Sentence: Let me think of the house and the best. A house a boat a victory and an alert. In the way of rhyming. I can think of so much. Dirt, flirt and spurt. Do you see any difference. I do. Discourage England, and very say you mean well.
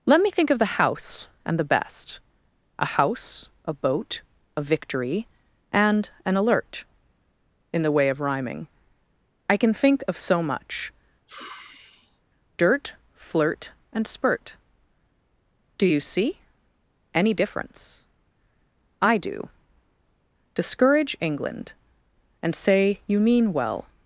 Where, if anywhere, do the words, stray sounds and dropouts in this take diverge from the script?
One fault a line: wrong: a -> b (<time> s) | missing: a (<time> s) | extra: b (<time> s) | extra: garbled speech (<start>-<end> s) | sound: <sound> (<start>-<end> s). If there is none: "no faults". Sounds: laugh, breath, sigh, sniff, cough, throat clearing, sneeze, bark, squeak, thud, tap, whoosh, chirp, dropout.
sound: sigh (11.3-12.2 s)
missing: very (22.6 s)